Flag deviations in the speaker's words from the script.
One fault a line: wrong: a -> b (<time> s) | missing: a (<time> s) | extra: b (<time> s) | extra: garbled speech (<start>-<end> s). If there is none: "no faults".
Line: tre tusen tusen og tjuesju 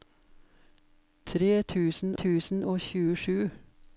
no faults